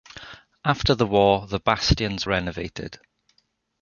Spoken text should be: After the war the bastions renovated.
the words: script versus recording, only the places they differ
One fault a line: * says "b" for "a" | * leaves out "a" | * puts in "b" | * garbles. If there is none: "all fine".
all fine